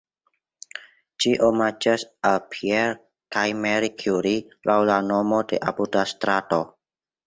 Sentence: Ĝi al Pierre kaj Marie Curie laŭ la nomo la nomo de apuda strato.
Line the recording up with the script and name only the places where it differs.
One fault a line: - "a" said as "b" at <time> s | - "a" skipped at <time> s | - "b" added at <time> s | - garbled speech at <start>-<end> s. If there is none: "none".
- "omaĝas" added at 1.5 s
- "la nomo" skipped at 5.5 s